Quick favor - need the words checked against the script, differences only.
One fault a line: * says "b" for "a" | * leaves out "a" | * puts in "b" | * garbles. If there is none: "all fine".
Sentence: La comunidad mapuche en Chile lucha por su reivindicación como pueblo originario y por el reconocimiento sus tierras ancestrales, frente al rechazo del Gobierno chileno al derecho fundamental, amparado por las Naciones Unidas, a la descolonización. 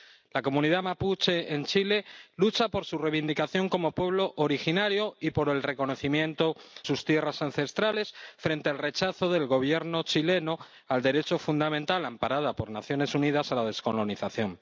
all fine